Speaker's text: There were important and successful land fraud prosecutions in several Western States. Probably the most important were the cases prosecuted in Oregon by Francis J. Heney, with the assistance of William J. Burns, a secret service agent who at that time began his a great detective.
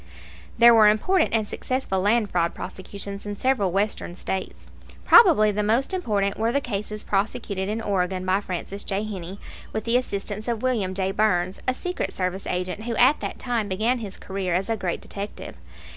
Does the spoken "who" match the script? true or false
true